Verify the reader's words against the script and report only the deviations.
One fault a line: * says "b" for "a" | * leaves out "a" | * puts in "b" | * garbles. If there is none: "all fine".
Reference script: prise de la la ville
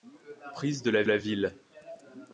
all fine